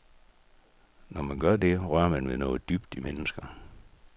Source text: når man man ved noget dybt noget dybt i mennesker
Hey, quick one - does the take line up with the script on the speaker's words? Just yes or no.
no